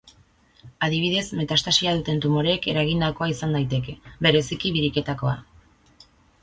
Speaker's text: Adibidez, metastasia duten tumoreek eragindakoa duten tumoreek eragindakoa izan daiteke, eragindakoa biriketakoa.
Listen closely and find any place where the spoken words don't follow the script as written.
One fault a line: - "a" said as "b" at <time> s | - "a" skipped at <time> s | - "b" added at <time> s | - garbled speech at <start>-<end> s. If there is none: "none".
- "duten tumoreek eragindakoa" skipped at 3.3 s
- "eragindakoa" said as "bereziki" at 4.3 s